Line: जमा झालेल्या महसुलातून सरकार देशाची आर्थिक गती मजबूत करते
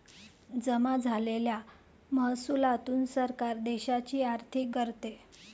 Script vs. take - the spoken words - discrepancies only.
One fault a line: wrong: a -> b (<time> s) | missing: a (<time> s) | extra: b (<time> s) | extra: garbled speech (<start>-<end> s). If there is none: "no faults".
missing: गती मजबूत (4.7 s)